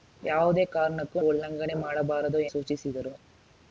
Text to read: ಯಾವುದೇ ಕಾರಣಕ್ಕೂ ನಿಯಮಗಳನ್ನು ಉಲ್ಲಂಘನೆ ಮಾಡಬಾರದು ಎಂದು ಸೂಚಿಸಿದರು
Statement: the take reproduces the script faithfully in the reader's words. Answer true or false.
false